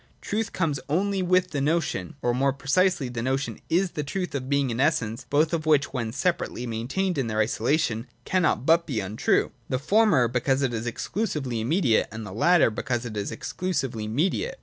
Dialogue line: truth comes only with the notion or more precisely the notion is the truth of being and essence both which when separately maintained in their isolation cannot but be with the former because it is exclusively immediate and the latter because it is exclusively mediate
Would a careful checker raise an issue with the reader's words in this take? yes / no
yes